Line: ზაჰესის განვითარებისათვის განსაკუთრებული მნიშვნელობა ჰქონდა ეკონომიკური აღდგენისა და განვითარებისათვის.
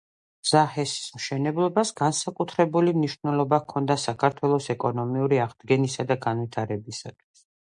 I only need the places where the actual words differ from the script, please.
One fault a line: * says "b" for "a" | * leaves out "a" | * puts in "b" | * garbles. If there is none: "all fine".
* says "მშენებლობას" for "განვითარებისათვის"
* puts in "საქართველოს"